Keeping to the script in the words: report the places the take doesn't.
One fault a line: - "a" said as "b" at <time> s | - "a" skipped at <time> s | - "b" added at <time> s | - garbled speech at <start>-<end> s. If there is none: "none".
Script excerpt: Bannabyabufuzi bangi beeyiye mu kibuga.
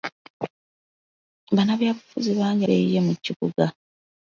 none